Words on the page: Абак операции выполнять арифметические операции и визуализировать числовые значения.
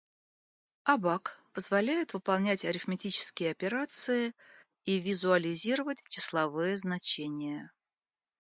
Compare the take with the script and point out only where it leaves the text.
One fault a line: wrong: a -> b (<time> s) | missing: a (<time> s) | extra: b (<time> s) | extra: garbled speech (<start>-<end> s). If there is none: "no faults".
wrong: операции -> позволяет (1.5 s)